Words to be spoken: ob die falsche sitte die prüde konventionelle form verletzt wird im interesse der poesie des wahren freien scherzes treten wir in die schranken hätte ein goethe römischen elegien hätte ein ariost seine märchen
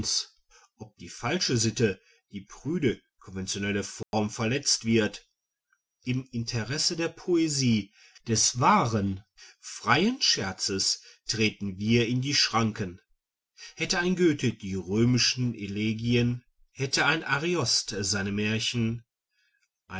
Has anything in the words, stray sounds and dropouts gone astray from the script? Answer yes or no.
yes